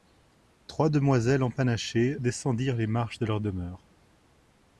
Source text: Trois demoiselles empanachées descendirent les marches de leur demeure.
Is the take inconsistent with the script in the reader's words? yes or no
no